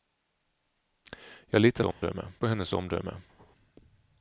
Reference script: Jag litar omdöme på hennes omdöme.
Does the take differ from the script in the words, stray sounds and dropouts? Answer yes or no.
yes